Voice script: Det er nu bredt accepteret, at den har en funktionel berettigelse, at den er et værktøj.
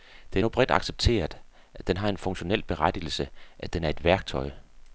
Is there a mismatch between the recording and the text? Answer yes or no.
no